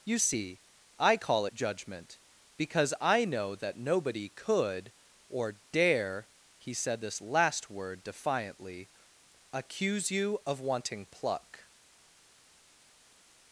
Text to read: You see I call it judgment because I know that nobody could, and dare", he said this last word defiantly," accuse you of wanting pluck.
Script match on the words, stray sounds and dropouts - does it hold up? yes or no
no